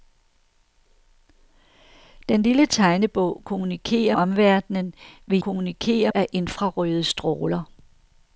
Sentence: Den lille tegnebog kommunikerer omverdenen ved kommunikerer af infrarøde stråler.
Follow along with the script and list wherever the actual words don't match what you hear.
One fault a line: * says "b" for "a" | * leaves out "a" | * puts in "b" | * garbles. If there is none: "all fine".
all fine